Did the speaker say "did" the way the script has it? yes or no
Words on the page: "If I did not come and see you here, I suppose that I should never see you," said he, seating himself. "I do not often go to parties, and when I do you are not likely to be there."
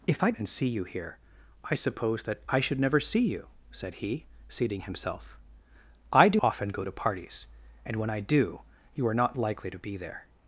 no